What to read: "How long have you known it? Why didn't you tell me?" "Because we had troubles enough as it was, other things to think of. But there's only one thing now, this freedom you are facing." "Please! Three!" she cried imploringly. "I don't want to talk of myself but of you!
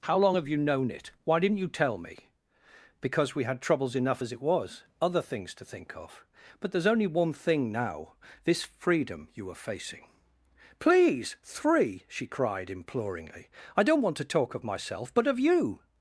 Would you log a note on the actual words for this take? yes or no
no